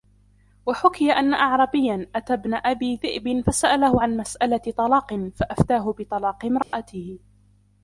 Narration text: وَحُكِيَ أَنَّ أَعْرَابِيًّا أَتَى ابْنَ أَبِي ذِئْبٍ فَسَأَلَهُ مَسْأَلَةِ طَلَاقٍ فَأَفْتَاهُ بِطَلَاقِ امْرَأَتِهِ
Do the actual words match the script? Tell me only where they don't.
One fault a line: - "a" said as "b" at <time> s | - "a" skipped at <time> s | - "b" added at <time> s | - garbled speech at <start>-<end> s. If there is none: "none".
- "عَنْ" added at 4.0 s